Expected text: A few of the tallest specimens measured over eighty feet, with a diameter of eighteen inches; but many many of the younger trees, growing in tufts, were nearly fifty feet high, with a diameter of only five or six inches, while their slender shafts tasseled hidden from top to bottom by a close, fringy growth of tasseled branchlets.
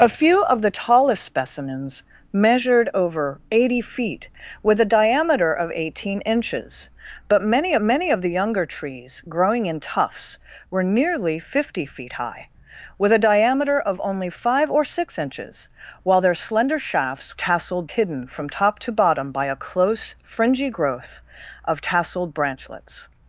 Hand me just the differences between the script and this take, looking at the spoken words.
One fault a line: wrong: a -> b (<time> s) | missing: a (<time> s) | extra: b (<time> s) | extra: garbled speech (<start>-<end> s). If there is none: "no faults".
no faults